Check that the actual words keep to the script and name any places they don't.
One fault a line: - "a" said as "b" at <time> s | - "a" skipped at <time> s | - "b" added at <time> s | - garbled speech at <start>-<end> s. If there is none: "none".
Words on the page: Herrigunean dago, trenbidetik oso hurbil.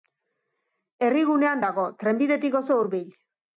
none